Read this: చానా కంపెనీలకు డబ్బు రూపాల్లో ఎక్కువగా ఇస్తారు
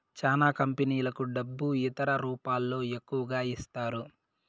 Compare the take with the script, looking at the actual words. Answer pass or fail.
fail